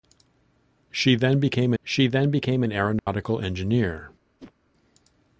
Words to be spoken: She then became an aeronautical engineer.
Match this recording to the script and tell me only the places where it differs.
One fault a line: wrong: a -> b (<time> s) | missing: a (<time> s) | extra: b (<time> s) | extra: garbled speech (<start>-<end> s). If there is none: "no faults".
extra: she then became (1.8 s)